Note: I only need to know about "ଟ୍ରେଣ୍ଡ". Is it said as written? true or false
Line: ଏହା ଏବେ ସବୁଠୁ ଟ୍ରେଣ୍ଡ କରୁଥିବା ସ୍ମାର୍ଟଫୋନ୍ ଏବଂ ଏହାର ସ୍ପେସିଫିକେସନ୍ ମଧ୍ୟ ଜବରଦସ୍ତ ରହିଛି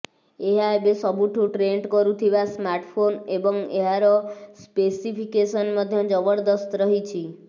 true